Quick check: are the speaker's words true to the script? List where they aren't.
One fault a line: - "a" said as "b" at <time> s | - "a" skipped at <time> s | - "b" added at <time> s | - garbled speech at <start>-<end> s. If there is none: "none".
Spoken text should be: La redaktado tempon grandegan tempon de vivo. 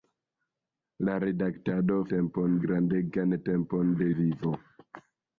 none